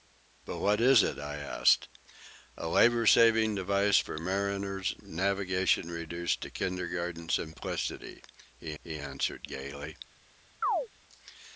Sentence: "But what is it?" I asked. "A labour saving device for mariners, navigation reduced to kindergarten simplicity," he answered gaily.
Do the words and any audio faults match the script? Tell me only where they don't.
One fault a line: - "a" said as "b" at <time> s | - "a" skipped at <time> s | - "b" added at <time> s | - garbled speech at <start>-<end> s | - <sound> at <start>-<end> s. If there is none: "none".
- "he" added at 8.8 s
- chirp at 10.6-10.9 s